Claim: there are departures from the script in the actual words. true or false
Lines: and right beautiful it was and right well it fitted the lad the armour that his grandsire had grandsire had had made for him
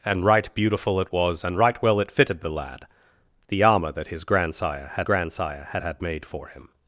false